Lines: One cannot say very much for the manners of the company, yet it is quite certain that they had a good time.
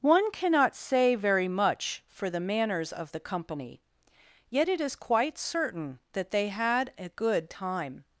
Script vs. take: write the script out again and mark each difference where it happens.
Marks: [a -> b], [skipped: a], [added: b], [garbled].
One cannot say very much for the manners of the company, yet it is quite certain that they had a good time.